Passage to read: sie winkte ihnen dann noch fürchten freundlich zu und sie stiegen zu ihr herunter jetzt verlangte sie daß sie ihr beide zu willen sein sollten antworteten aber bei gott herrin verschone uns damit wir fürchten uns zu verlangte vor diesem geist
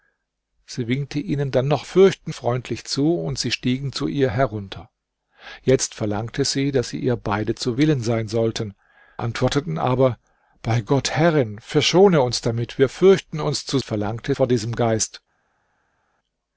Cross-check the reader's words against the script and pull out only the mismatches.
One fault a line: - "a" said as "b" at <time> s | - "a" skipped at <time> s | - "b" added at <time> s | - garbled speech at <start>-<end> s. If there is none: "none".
none